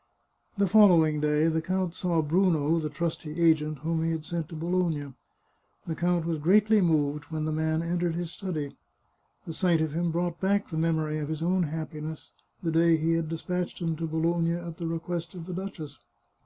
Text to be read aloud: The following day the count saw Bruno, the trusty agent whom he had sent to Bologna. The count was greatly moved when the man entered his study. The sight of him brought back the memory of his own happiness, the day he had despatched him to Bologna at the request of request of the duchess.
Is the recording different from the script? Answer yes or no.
yes